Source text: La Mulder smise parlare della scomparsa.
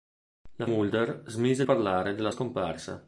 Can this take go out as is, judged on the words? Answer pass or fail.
pass